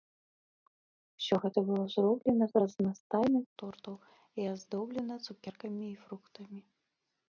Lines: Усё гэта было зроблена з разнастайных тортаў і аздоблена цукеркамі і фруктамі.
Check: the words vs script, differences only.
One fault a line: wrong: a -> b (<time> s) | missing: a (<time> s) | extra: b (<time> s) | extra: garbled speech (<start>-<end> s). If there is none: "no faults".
no faults